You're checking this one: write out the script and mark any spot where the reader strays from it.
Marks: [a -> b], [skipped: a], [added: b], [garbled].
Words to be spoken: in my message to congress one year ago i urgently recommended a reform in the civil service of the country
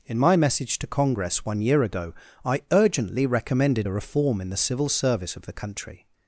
in my message to congress one year ago i urgently recommended a reform in the civil service of the country